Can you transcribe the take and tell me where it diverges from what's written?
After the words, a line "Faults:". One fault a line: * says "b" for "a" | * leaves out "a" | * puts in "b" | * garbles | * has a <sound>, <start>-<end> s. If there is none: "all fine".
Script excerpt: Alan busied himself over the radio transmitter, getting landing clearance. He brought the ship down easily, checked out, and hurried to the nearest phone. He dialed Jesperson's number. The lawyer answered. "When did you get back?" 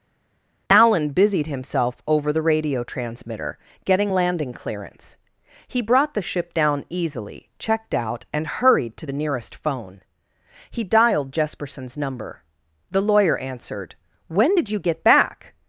Alan busied himself over the radio transmitter, getting landing clearance. He brought the ship down easily, checked out, and hurried to the nearest phone. He dialed Jesperson's number. The lawyer answered. "When did you get back?"
Faults:
all fine